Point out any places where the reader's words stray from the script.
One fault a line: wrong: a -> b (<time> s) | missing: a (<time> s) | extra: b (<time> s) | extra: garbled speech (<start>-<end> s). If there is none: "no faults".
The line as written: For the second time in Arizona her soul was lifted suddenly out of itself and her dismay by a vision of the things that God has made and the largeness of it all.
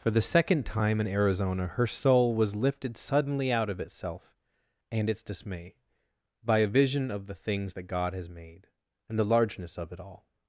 wrong: her -> its (5.1 s)